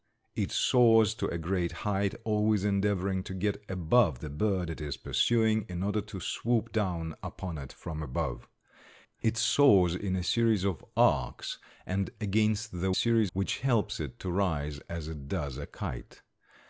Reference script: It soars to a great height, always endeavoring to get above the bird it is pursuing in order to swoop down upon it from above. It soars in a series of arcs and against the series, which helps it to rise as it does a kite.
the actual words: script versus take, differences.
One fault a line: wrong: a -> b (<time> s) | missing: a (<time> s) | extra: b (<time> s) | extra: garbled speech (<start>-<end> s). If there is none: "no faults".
no faults